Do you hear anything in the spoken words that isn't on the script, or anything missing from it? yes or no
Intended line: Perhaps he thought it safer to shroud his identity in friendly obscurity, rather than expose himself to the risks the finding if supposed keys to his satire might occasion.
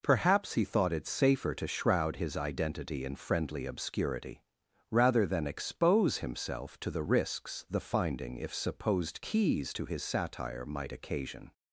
no